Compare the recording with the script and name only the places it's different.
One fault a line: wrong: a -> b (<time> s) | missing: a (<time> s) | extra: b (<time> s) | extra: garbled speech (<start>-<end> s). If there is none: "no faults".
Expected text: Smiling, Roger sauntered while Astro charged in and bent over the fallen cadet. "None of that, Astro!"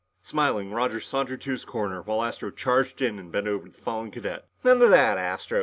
extra: to his corner (1.4 s)